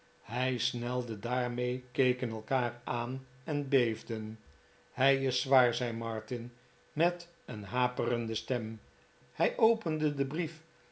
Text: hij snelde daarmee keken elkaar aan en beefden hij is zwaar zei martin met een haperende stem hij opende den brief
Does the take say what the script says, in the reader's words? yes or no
yes